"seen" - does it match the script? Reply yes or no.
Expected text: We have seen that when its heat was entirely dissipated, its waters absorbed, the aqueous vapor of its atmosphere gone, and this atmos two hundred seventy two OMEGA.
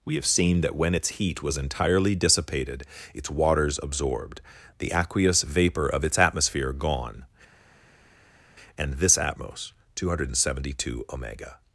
yes